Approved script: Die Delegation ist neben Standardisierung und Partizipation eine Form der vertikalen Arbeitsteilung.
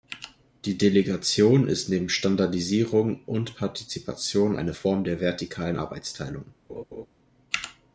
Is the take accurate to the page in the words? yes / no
yes